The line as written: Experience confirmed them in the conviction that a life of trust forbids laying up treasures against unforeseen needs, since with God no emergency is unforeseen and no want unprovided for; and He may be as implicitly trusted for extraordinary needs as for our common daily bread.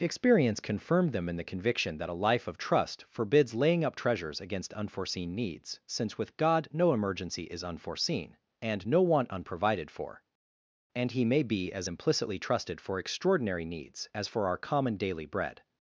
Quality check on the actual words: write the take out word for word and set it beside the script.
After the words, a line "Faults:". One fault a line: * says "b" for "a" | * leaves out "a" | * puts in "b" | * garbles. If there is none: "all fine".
Experience confirmed them in the conviction that a life of trust forbids laying up treasures against unforeseen needs, since with God no emergency is unforeseen and no want unprovided for; and He may be as implicitly trusted for extraordinary needs as for our common daily bread.
Faults:
all fine